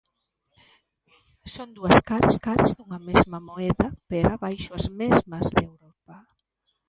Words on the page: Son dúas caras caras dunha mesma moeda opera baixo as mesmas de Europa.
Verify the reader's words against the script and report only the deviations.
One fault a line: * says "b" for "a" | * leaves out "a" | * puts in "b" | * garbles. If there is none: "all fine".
all fine